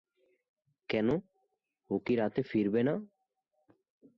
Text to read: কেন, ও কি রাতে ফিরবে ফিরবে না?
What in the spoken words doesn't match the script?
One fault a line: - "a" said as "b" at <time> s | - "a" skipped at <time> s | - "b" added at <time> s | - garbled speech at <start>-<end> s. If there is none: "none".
- "ফিরবে" skipped at 2.8 s